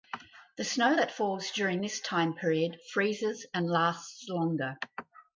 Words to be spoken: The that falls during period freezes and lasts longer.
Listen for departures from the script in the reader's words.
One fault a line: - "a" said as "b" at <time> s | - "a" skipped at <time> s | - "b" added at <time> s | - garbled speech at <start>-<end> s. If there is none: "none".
- "snow" added at 0.6 s
- "this time" added at 1.8 s